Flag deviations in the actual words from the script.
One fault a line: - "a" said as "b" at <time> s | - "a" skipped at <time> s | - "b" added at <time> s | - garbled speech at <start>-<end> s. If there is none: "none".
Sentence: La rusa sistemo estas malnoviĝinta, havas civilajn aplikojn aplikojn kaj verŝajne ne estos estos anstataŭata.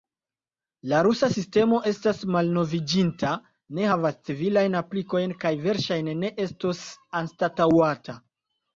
- "ne" added at 3.8 s
- "aplikojn" skipped at 5.4 s
- "estos" skipped at 6.9 s